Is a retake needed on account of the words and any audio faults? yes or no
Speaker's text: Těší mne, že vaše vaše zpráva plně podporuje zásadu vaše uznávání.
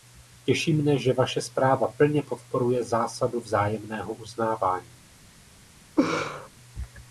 yes